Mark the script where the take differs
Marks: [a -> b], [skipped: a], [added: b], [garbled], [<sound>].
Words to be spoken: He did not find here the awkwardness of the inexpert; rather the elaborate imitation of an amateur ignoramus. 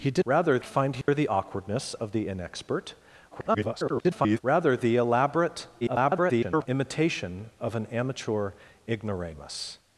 He did [not -> rather] find here [dropout] the awkwardness of the inexpert; [garbled] rather the elaborate [garbled] imitation of an amateur ignoramus.